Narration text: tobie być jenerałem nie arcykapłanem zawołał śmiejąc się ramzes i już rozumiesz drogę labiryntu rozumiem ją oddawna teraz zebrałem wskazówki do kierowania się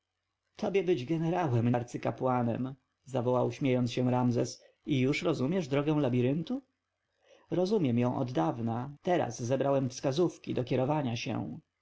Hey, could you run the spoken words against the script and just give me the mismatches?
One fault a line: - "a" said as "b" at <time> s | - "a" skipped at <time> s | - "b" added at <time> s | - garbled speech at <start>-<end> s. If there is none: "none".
- "nie" skipped at 1.7 s